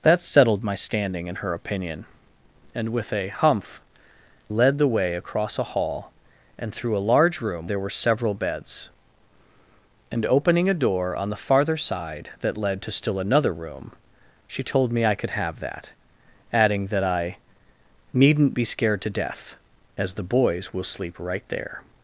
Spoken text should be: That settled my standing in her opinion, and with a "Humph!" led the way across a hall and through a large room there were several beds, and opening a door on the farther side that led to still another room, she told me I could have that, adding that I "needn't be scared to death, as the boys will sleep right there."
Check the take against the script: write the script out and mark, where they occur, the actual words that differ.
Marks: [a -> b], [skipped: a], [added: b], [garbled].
That settled my standing in her opinion, and with a "Humph!" led the way across a hall and through a large room there were several beds, and opening a door on the farther side that led to still another room, she told me I could have that, adding that I "needn't be scared to death, as the boys will sleep right there."